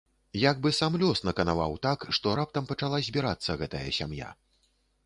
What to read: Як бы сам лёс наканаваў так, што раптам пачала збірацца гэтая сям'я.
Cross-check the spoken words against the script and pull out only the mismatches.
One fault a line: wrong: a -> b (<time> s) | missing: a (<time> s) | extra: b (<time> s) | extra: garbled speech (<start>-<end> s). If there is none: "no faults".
no faults